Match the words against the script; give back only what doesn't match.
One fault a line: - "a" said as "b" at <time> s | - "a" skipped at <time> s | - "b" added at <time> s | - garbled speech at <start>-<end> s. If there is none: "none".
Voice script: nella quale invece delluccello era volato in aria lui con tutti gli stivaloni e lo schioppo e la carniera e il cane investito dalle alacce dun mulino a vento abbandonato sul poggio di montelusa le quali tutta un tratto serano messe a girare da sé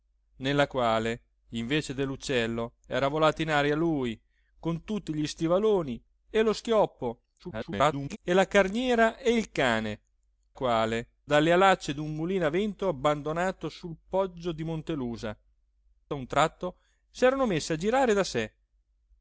- garbled speech at 7.4-8.2 s
- "investito" said as "quale" at 10.5 s
- "le quali tutta" skipped at 15.4 s